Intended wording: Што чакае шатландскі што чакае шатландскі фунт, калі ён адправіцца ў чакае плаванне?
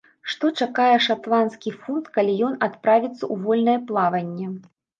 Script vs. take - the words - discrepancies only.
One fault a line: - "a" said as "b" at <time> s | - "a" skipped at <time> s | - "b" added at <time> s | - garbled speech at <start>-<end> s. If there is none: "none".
- "што чакае шатландскі" skipped at 1.8 s
- "чакае" said as "вольнае" at 3.5 s